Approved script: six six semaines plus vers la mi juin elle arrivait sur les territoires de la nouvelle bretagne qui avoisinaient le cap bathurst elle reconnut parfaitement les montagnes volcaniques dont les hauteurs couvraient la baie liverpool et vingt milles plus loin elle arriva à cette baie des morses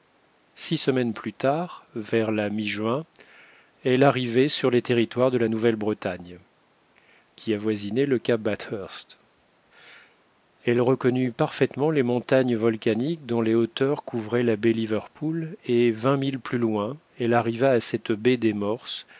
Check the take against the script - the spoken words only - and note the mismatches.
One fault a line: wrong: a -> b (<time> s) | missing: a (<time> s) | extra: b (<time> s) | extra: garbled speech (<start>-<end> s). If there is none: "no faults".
missing: six (0.8 s)
extra: tard (1.3 s)